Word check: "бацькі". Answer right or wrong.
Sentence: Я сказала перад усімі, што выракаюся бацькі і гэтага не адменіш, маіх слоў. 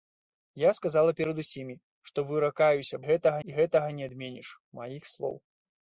wrong